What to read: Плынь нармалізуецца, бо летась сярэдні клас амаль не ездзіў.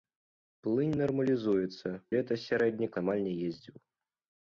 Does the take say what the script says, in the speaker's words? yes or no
no